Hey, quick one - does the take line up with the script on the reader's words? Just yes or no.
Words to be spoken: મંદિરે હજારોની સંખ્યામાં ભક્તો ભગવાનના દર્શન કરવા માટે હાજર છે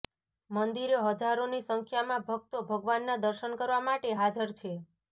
yes